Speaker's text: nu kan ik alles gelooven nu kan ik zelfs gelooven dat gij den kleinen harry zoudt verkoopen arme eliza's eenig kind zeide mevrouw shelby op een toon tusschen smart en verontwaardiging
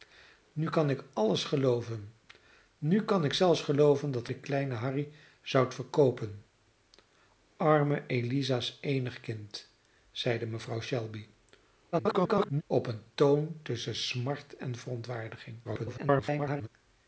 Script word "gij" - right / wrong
wrong